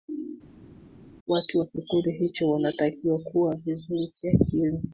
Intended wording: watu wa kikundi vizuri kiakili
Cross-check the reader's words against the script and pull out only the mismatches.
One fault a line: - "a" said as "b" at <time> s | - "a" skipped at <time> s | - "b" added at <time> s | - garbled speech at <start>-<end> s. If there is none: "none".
- "hicho wanatakiwa kuwa" added at 2.1 s